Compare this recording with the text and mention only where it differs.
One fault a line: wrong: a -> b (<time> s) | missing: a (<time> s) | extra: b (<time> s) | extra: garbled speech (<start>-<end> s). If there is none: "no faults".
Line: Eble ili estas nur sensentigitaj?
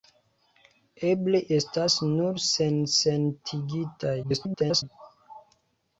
missing: ili (1.4 s)
extra: garbled speech (4.2-4.8 s)